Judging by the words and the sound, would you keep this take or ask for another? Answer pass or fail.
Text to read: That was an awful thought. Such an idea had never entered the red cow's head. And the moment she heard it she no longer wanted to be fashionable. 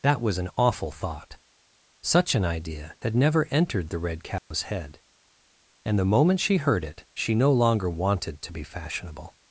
fail